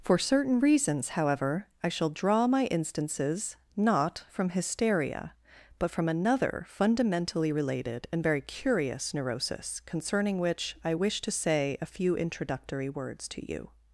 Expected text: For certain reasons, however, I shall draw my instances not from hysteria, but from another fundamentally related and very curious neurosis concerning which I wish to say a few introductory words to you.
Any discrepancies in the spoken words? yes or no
no